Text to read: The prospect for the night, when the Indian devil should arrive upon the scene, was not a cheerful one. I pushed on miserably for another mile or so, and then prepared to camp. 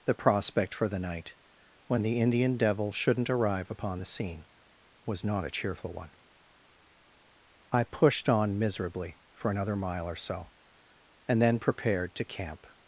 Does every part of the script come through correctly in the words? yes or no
no